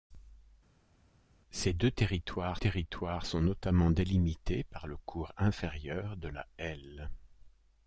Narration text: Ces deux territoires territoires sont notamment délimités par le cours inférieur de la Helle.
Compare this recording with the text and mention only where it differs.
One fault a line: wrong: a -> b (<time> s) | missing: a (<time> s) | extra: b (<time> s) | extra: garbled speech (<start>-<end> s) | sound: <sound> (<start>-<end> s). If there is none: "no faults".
no faults